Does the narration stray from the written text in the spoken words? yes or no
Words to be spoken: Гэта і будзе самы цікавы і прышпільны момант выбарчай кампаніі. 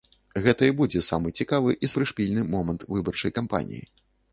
no